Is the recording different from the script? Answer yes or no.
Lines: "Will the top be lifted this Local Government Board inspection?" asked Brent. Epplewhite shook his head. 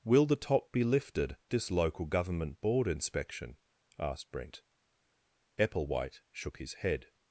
no